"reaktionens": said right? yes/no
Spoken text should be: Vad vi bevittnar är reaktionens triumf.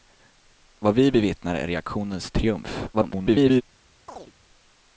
yes